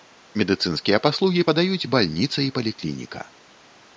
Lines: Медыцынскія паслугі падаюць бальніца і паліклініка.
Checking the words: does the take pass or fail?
pass